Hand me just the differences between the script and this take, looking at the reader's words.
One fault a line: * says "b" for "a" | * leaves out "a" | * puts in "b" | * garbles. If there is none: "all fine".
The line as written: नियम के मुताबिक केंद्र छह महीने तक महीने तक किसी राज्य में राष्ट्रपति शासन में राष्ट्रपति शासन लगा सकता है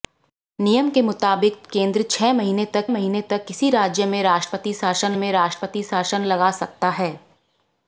all fine